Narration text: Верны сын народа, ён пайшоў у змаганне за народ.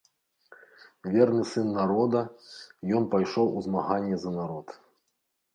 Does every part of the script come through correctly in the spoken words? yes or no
yes